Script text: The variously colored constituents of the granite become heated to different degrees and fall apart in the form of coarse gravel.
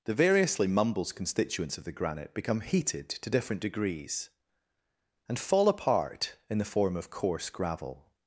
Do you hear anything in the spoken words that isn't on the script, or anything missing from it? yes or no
yes